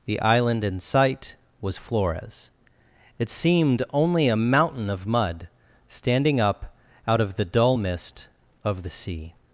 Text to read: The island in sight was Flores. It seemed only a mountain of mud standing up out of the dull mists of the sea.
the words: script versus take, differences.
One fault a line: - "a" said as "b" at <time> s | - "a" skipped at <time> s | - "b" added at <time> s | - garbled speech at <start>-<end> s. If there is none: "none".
- "mists" said as "mist" at 7.7 s